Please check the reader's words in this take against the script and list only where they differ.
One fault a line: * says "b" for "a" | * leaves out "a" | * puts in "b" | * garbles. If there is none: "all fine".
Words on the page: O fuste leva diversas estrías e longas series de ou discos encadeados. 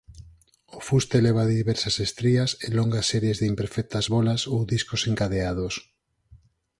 * puts in "imperfectas bólas"